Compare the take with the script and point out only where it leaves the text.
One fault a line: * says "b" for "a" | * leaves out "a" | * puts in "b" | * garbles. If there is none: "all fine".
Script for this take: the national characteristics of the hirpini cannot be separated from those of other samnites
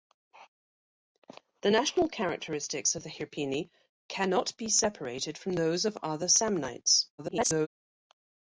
* garbles